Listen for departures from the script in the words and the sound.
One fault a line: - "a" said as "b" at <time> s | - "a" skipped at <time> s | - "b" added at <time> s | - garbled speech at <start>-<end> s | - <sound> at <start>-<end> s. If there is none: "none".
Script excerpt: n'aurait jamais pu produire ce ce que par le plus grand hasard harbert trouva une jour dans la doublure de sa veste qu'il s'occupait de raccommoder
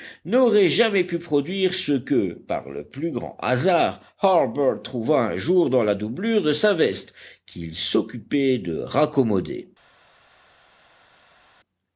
- "ce" skipped at 1.9 s
- "une" said as "un" at 5.3 s